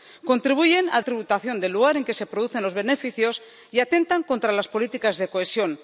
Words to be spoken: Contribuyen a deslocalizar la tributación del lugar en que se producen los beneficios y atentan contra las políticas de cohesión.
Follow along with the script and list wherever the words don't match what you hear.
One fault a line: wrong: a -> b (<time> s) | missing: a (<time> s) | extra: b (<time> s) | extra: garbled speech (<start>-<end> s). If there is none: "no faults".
missing: deslocalizar la (1.0 s)